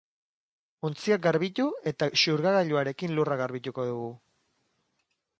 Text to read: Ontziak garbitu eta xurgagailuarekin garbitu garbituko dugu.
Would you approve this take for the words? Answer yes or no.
no